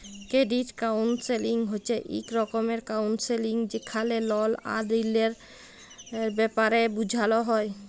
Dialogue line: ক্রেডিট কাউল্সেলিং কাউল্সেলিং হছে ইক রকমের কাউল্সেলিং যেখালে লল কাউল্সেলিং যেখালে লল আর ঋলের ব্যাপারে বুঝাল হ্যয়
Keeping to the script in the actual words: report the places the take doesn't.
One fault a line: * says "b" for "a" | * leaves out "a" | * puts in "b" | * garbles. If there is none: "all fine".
* leaves out "কাউল্সেলিং"
* leaves out "কাউল্সেলিং যেখালে লল"